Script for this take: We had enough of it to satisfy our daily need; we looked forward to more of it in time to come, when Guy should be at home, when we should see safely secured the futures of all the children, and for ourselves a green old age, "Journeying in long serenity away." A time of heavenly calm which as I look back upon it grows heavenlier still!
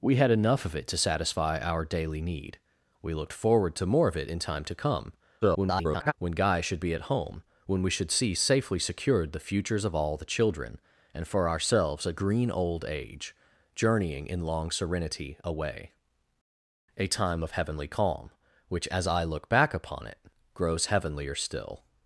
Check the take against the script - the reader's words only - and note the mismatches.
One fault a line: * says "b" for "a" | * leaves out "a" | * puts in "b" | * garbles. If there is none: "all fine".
* garbles